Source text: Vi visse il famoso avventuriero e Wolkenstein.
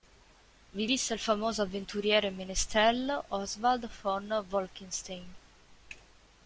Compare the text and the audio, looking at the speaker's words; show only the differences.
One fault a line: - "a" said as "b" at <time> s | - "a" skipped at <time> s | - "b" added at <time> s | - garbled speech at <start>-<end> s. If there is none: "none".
- "menestrello Oswald von" added at 2.3 s